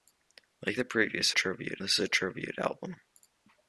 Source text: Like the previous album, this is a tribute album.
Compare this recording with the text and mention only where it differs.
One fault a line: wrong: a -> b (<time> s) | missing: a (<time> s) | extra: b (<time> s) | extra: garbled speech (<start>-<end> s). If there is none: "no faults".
wrong: album -> tribute (1.3 s)